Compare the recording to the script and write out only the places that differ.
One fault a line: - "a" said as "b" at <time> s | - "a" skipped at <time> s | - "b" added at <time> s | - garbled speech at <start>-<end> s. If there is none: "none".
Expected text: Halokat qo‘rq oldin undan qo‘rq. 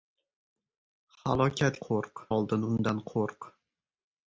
none